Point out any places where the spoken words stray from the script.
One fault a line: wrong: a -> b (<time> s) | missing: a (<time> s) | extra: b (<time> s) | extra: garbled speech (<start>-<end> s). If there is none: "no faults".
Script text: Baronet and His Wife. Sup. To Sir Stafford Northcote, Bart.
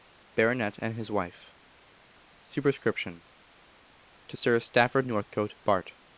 no faults